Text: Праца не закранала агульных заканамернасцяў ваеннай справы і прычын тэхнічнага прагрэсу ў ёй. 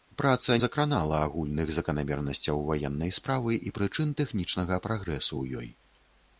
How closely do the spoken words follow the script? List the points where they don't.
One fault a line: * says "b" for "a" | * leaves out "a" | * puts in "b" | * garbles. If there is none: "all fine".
* leaves out "не"